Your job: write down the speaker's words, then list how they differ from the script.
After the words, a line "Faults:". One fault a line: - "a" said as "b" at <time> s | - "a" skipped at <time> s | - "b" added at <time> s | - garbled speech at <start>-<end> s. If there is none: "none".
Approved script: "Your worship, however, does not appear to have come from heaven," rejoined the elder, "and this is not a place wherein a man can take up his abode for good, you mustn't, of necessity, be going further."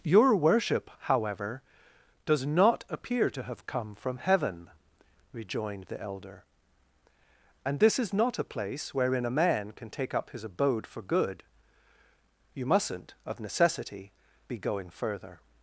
"Your worship, however, does not appear to have come from heaven," rejoined the elder, "and this is not a place wherein a man can take up his abode for good, you mustn't, of necessity, be going further."
Faults:
none